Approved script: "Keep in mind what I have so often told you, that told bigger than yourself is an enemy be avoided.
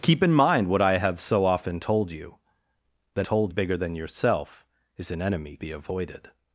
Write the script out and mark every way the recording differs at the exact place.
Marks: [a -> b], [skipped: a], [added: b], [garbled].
"Keep in mind what I have so often told you, that told bigger than yourself is an enemy be avoided.